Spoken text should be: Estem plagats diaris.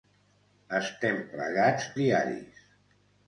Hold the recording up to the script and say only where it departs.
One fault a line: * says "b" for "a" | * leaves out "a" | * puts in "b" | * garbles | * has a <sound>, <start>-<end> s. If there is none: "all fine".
all fine